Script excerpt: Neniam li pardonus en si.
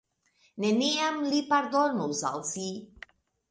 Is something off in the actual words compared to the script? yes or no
yes